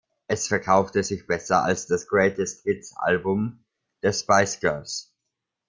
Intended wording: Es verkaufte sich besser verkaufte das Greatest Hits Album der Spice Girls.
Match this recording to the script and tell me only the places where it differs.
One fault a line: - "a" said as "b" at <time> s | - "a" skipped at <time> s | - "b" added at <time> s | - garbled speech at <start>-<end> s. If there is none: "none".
- "verkaufte" said as "als" at 1.6 s